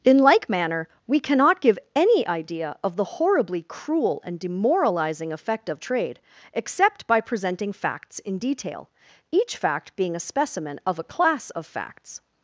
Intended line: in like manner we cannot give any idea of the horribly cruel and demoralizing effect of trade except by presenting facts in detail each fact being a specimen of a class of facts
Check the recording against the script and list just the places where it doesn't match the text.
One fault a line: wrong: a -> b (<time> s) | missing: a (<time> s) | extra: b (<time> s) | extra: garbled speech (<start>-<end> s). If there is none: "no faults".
no faults